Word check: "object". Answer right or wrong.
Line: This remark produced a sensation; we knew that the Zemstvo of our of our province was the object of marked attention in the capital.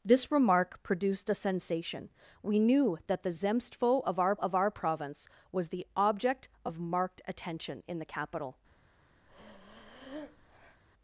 right